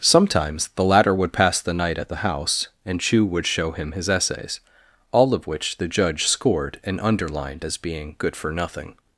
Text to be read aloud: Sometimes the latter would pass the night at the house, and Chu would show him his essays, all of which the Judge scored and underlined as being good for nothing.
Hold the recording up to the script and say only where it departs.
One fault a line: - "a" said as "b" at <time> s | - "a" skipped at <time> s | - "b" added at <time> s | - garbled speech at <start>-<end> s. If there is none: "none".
none